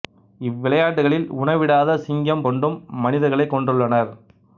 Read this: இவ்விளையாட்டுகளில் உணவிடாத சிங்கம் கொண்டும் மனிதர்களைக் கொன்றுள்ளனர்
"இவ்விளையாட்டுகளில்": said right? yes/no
yes